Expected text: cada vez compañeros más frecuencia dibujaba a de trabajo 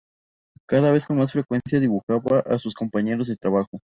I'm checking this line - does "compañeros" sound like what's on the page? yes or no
no